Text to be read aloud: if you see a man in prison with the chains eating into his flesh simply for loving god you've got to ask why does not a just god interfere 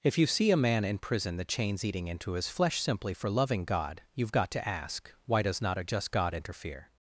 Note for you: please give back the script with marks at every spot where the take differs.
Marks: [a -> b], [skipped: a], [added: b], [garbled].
if you see a man in prison [skipped: with] the chains eating into his flesh simply for loving god you've got to ask why does not a just god interfere